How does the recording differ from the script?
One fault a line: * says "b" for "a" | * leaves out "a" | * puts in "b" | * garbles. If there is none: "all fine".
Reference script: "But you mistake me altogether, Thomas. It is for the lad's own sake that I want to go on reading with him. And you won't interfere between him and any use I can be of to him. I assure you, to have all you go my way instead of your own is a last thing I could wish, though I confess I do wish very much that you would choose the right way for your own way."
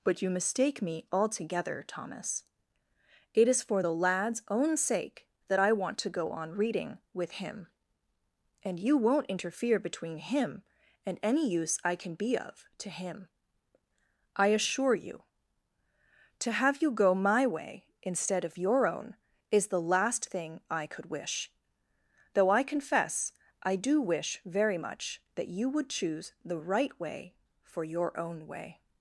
* leaves out "all"
* says "the" for "a"